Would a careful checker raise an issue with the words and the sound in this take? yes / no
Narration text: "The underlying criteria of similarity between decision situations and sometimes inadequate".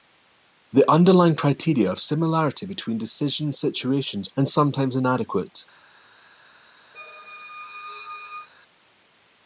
yes